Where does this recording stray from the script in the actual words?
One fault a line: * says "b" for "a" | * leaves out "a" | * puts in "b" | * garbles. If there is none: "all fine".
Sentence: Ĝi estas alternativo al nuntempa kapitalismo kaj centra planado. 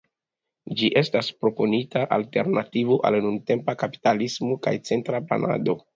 * puts in "proponita"